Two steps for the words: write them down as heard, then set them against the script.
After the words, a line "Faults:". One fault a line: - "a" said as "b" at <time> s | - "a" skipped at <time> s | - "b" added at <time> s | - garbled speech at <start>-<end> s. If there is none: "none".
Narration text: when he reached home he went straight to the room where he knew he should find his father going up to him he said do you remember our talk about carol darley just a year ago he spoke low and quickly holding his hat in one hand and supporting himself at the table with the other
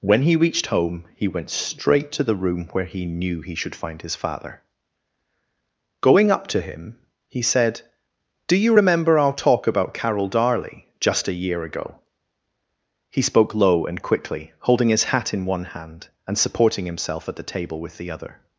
when he reached home he went straight to the room where he knew he should find his father going up to him he said do you remember our talk about carol darley just a year ago he spoke low and quickly holding his hat in one hand and supporting himself at the table with the other
Faults:
none